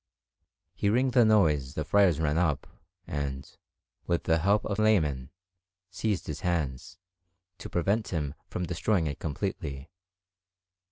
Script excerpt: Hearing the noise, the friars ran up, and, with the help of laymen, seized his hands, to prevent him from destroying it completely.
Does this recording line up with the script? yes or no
yes